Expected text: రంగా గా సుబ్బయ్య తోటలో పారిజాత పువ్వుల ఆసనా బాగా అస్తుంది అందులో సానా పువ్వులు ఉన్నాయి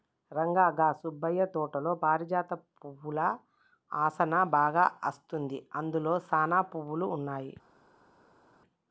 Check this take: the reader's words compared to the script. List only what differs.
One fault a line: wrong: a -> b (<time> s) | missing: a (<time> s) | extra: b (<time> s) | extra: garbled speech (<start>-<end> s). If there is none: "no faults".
no faults